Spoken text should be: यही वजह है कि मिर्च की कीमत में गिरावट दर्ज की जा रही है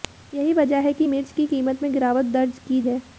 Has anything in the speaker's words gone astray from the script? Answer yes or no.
yes